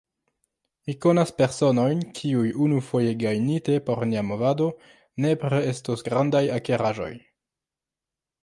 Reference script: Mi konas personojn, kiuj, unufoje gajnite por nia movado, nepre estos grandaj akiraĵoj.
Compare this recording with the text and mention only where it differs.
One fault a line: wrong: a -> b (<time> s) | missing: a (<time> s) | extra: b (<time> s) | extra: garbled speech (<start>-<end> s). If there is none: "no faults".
no faults